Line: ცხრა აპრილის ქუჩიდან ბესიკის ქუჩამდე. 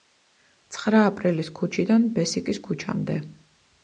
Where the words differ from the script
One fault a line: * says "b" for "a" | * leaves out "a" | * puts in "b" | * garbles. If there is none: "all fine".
all fine